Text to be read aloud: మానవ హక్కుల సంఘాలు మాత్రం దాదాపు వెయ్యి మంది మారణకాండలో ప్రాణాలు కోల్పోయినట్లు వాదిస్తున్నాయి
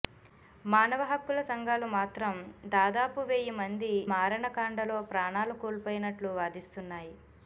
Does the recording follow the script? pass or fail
pass